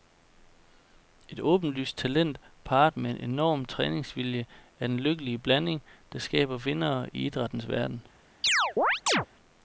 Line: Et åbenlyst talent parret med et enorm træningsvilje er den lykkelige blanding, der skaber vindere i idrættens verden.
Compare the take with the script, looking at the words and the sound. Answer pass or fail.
fail